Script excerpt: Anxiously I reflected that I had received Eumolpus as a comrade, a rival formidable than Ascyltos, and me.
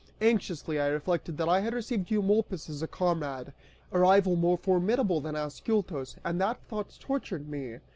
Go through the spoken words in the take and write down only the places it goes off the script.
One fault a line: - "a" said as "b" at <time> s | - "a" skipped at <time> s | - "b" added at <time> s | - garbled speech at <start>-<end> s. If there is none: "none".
- "more" added at 4.3 s
- "that thought tortured" added at 6.4 s